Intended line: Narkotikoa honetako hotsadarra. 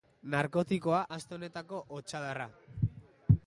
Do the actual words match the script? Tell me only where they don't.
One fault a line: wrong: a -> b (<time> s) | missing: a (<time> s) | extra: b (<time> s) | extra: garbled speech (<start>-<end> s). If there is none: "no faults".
extra: aste (1.2 s)